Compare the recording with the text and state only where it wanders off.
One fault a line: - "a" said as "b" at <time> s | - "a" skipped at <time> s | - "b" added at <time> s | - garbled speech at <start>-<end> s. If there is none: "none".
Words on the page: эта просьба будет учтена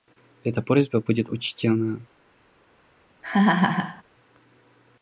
none